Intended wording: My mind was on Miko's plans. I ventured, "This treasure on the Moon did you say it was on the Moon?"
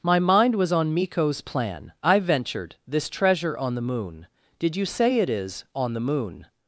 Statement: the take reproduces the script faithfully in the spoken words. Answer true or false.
false